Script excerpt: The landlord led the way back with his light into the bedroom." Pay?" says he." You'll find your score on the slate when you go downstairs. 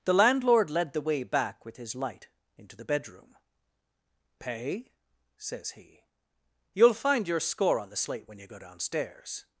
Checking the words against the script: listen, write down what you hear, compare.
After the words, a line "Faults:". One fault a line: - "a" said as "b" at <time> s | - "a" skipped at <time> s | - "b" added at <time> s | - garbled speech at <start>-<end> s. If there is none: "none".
The landlord led the way back with his light into the bedroom." Pay?" says he." You'll find your score on the slate when you go downstairs.
Faults:
none